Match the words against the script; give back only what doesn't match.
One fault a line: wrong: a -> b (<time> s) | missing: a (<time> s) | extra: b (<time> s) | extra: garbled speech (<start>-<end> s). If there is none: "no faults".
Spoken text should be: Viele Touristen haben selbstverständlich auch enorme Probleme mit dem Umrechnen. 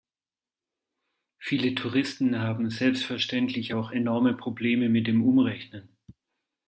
no faults